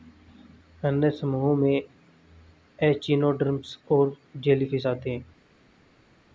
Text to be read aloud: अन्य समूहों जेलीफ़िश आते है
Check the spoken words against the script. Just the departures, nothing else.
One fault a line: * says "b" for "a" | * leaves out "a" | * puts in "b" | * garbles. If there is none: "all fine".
* puts in "में एचिनोडर्म्स और"